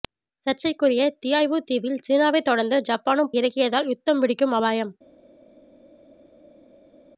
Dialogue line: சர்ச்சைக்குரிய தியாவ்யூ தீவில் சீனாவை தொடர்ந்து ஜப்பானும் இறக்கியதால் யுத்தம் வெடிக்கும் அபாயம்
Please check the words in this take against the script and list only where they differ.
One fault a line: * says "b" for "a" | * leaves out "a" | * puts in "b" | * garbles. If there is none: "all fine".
all fine